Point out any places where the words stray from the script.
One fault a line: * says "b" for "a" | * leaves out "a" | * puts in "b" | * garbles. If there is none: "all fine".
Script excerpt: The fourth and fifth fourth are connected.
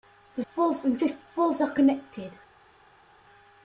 all fine